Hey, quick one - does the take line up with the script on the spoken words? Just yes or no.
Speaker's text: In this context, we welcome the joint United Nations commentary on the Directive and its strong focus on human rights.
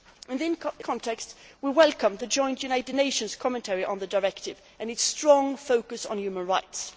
no